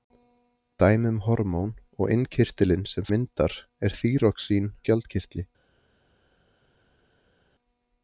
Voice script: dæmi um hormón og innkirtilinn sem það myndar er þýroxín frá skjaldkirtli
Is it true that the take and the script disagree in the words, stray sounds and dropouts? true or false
true